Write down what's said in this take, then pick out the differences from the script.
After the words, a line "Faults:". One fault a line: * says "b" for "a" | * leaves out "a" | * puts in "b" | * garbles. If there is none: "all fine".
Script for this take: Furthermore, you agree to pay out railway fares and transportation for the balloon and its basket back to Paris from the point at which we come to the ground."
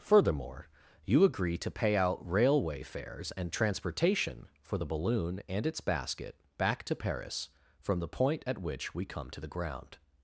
Furthermore, you agree to pay out railway fares and transportation for the balloon and its basket back to Paris from the point at which we come to the ground."
Faults:
all fine